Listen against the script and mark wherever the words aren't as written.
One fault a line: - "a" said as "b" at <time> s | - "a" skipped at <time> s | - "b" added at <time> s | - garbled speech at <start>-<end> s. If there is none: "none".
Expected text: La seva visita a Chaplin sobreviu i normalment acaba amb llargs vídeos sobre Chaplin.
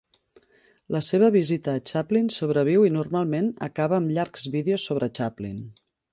none